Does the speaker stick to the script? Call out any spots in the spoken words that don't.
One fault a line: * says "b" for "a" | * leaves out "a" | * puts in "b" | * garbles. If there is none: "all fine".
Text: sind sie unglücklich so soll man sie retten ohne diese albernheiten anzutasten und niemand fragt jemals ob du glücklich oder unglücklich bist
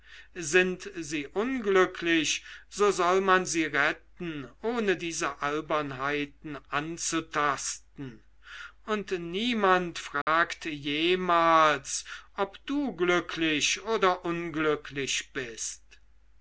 all fine